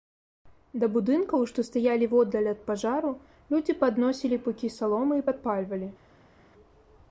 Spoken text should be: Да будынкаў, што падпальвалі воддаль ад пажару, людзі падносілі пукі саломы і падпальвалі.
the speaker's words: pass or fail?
fail